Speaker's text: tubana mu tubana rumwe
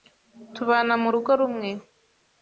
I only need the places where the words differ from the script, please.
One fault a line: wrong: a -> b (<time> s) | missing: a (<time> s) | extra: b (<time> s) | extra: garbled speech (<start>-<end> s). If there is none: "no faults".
wrong: tubana -> rugo (1.1 s)